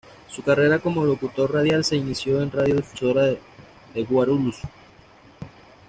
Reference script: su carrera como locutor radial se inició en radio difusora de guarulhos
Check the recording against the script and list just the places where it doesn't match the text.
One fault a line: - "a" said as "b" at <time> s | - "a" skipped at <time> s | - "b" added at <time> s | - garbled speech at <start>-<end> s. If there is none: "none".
none